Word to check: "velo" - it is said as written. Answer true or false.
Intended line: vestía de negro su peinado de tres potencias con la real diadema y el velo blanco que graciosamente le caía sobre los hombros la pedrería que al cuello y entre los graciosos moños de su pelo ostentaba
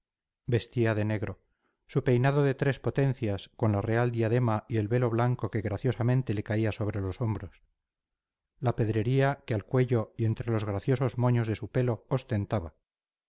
true